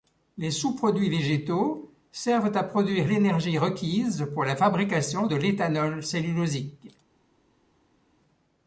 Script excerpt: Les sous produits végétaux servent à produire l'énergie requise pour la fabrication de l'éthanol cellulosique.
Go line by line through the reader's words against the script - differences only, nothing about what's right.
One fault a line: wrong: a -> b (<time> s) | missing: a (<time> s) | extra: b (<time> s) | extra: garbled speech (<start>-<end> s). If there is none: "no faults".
no faults